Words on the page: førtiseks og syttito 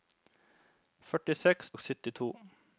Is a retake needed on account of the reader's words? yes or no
no